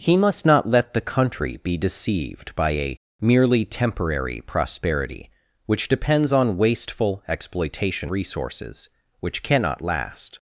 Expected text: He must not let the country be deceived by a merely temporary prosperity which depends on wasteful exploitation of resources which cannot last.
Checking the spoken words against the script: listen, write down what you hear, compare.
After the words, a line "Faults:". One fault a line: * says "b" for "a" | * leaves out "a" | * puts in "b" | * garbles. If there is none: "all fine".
He must not let the country be deceived by a merely temporary prosperity which depends on wasteful exploitation resources which cannot last.
Faults:
* leaves out "of"